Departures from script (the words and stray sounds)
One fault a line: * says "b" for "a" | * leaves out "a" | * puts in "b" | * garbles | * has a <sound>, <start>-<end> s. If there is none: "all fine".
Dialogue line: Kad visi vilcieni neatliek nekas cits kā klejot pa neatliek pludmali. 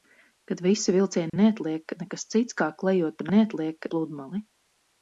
* has a dropout, 1.3-1.3 s